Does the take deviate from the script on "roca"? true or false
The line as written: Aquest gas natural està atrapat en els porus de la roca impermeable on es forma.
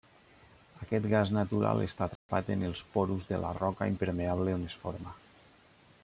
false